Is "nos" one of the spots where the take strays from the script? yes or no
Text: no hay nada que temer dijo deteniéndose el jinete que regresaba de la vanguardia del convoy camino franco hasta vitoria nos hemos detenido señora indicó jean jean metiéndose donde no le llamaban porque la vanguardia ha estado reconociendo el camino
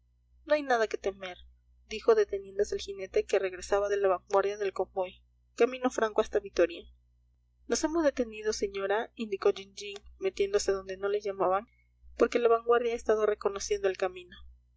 no